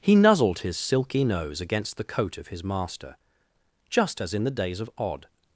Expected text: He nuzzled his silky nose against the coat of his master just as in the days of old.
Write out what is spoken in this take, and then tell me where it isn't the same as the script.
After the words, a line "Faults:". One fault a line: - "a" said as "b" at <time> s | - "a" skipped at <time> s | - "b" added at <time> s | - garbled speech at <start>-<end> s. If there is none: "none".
He nuzzled his silky nose against the coat of his master just as in the days of odd.
Faults:
- "old" said as "odd" at 5.0 s